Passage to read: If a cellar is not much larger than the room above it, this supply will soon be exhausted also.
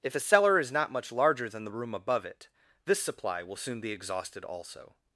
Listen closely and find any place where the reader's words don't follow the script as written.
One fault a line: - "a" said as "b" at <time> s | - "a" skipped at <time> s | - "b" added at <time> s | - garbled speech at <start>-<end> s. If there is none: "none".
none